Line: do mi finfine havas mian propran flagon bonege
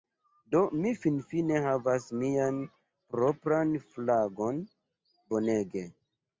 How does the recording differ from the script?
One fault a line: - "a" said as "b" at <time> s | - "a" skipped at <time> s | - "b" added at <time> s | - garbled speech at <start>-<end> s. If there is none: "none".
none